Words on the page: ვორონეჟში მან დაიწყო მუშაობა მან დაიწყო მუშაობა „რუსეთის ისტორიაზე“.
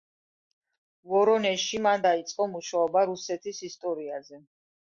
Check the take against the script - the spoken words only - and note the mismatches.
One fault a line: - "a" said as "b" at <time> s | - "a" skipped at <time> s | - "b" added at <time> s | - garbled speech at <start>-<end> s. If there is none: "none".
- "მან დაიწყო მუშაობა" skipped at 3.0 s